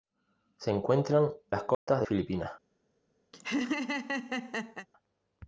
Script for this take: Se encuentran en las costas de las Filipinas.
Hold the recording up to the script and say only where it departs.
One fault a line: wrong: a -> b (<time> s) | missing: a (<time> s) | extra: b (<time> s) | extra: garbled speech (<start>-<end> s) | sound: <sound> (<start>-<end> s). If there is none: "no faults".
missing: en (1.3 s)
sound: dropout (1.7-1.9 s)
missing: las (2.1 s)
sound: laugh (3.3-4.9 s)